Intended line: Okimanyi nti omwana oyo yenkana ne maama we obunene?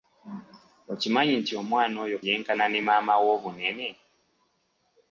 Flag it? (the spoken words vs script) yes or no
no